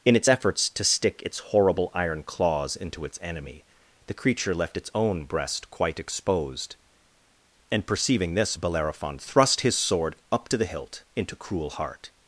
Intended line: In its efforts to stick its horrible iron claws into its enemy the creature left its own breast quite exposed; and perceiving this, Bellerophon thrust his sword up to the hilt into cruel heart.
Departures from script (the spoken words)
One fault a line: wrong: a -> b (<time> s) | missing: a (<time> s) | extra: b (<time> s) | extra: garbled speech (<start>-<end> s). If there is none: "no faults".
no faults